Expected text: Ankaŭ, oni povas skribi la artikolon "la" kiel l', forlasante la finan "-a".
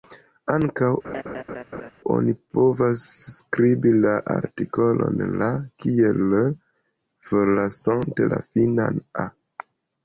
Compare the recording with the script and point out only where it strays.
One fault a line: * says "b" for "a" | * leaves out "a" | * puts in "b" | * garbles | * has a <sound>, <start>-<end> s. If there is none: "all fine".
* has a laugh, 1.0-1.9 s